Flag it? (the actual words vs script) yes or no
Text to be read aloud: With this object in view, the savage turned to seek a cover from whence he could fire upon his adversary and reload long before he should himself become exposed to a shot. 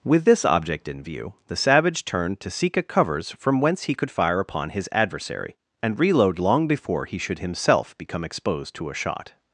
yes